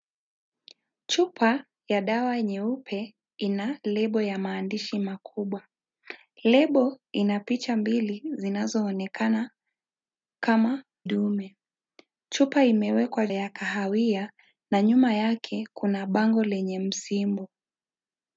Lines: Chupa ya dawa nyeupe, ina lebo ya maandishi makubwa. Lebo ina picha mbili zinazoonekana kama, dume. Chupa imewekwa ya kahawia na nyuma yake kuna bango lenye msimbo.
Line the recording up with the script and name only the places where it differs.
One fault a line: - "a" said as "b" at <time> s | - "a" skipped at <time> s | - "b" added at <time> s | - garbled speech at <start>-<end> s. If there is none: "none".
none